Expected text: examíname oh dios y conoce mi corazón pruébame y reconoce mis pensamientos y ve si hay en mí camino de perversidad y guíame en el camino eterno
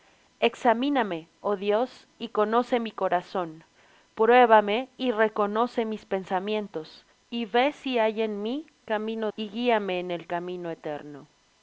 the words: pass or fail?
fail